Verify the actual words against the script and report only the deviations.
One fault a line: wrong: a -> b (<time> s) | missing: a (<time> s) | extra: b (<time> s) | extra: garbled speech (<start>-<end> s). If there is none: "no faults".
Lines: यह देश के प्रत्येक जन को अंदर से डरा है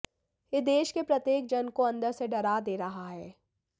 extra: दे रहा (2.6 s)